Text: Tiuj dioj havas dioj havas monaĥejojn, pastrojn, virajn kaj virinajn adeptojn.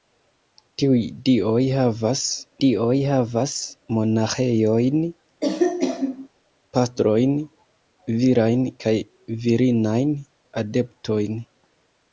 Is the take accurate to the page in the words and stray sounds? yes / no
no